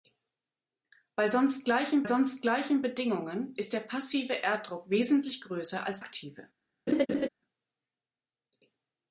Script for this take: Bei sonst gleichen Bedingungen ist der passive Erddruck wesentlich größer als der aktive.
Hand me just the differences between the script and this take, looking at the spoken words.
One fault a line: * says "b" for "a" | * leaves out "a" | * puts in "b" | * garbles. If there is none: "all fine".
* puts in "sonst gleichen"
* leaves out "der"